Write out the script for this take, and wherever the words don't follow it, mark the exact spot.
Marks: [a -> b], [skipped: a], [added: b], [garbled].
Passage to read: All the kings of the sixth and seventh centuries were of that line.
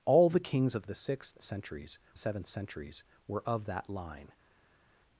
All the kings of the sixth [and -> centuries] seventh centuries were of that line.